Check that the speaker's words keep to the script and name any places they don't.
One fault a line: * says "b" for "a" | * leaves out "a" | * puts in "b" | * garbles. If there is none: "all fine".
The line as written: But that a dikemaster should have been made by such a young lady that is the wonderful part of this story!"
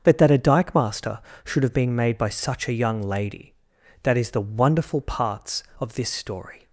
* says "parts" for "part"